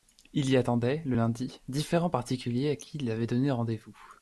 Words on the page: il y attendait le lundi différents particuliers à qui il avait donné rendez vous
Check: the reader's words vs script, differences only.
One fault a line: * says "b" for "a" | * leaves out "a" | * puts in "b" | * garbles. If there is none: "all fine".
all fine